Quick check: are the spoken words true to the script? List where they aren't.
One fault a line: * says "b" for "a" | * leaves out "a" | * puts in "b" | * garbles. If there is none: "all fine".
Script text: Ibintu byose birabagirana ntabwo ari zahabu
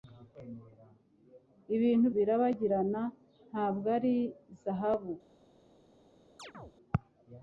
* leaves out "byose"